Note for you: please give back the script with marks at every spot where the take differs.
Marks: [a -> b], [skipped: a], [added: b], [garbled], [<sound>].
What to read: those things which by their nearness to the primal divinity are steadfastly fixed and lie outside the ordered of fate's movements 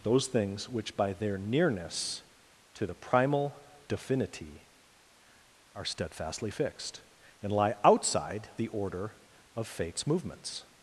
those things which by their nearness to the primal divinity are steadfastly fixed and lie outside the [ordered -> order] of fate's movements